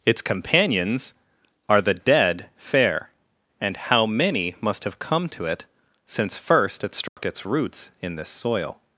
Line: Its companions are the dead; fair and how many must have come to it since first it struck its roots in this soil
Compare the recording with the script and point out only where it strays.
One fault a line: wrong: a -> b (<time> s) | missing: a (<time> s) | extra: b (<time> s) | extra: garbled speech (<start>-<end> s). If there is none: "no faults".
no faults